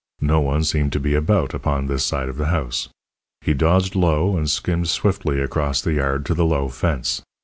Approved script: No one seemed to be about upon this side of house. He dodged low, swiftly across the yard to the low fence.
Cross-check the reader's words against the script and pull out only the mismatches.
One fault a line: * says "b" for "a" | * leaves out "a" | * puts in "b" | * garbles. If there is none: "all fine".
* puts in "the"
* puts in "and skimmed"